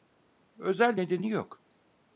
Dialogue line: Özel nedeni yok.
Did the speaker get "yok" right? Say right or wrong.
right